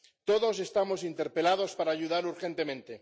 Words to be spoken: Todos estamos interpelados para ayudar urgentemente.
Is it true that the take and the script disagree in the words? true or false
false